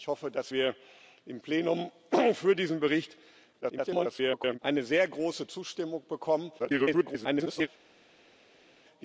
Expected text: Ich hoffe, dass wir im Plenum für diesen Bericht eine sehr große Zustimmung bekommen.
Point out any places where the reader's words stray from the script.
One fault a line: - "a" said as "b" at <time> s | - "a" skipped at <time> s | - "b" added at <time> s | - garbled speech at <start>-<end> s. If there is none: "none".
- garbled speech at 3.6-4.6 s
- garbled speech at 6.6-7.7 s